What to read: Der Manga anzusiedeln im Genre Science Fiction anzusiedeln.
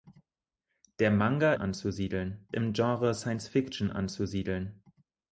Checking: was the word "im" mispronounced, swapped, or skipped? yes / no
no